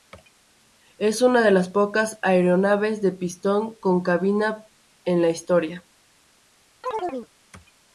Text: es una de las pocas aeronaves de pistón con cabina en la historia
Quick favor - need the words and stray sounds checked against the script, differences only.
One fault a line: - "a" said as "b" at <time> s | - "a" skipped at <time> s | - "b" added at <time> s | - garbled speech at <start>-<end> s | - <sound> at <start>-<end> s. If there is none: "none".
- chirp at 6.8-7.3 s